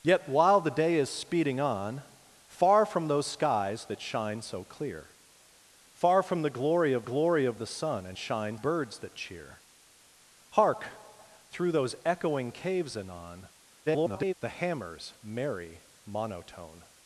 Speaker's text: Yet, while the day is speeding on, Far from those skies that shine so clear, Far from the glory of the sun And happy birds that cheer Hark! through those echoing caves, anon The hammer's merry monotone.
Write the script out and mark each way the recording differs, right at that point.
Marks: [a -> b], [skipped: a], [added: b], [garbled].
Yet, while the day is speeding on, Far from those skies that shine so clear, Far from the glory of [added: glory of] the sun And [happy -> shine] birds that cheer Hark! through those echoing caves, anon [garbled] The hammer's merry monotone.